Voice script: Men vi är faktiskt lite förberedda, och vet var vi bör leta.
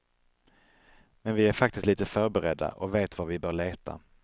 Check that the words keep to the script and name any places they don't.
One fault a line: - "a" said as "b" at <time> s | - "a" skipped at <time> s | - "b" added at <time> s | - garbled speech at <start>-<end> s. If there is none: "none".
none